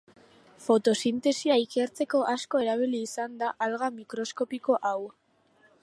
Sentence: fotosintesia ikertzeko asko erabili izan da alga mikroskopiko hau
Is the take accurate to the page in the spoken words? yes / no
yes